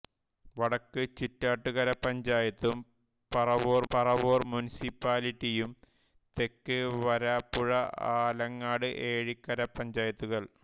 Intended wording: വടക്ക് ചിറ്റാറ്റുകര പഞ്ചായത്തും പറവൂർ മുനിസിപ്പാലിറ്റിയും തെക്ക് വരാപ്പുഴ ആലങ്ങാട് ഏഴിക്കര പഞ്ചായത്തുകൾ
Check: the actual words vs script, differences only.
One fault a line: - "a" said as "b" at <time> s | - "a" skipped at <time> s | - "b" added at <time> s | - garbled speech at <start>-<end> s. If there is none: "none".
- "പറവൂർ" added at 3.9 s